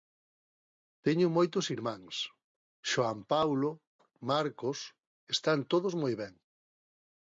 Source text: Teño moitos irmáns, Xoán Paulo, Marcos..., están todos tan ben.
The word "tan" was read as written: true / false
false